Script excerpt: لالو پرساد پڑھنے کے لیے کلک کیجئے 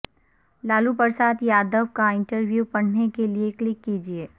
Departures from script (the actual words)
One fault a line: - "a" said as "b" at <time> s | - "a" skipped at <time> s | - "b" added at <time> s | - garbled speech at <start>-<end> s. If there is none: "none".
- "یادو کا انٹرویو" added at 1.4 s